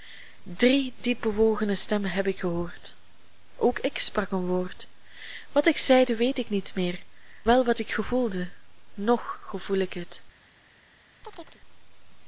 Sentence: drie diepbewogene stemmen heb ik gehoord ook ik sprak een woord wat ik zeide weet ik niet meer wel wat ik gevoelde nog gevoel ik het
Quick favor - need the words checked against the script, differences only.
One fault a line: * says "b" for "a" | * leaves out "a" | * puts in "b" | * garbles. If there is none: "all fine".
all fine